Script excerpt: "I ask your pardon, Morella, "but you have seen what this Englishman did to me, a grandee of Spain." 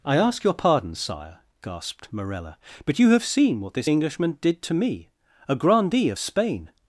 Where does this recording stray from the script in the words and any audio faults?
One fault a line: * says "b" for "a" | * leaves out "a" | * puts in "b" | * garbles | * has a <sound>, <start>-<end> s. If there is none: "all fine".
* puts in "Sire gasped"